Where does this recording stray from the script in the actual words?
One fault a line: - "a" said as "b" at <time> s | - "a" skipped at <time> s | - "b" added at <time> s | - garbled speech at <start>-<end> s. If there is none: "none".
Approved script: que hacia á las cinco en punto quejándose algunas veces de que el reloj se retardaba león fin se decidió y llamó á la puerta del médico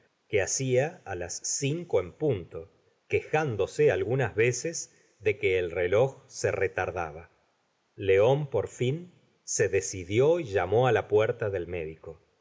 - "por" added at 8.5 s